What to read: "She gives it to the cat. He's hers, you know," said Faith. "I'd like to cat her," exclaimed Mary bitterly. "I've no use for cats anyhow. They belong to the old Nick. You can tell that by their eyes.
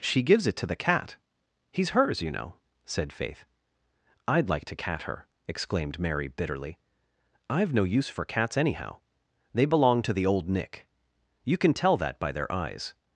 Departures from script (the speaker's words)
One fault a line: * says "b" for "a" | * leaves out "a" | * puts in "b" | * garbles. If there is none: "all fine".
all fine